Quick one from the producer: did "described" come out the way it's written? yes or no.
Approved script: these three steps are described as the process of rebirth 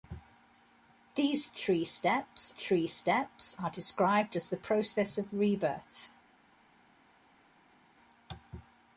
yes